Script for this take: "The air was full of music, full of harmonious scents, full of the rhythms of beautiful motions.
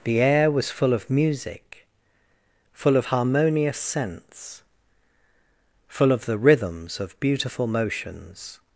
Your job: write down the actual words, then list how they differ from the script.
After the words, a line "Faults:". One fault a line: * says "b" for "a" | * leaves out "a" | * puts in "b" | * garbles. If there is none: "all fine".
"The air was full of music, full of harmonious scents, full of the rhythms of beautiful motions.
Faults:
all fine